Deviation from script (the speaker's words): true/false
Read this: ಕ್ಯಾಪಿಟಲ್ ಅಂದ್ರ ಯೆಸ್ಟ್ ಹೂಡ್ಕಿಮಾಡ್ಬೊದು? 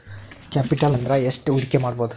false